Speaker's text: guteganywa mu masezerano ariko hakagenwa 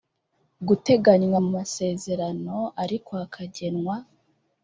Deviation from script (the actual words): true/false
false